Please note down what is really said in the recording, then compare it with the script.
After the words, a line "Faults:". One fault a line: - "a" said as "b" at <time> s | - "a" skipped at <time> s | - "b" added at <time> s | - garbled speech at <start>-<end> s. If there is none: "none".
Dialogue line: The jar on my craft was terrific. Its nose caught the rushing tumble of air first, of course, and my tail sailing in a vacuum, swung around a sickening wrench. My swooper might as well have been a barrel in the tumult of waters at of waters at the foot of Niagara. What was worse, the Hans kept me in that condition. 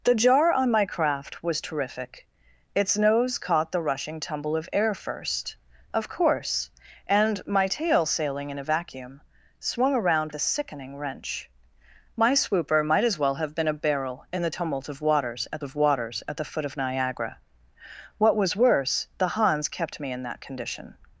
The jar on my craft was terrific. Its nose caught the rushing tumble of air first, of course, and my tail sailing in a vacuum, swung around a sickening wrench. My swooper might as well have been a barrel in the tumult of waters at of waters at the foot of Niagara. What was worse, the Hans kept me in that condition.
Faults:
none